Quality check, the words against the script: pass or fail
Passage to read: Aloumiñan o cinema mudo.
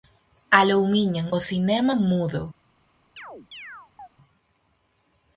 pass